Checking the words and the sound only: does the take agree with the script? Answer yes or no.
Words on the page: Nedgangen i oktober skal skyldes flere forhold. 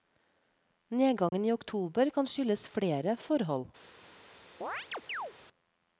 no